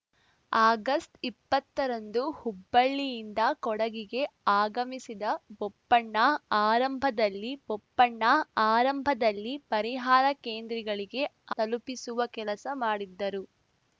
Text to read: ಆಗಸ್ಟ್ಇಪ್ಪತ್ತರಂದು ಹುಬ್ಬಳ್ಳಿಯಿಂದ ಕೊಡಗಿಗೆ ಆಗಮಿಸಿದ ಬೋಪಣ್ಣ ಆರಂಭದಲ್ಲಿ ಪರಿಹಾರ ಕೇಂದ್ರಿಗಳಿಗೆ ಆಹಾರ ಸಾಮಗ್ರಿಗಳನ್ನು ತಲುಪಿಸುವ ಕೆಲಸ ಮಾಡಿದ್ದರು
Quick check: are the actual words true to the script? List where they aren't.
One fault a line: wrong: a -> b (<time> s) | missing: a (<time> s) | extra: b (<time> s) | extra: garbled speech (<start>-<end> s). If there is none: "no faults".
extra: ಬೋಪಣ್ಣ ಆರಂಭದಲ್ಲಿ (7.7 s)
missing: ಆಹಾರ ಸಾಮಗ್ರಿಗಳನ್ನು (11.2 s)